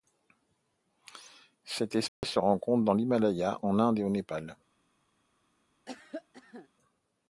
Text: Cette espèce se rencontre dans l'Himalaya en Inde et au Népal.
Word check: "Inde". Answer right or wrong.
right